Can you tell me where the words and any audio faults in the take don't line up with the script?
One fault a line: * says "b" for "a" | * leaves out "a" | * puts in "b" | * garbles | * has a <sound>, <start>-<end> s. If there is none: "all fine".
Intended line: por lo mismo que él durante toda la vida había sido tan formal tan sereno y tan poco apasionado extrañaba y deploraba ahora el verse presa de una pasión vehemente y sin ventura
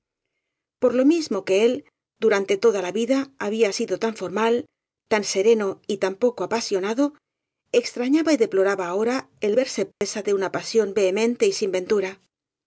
* has a dropout, 9.9-10.0 s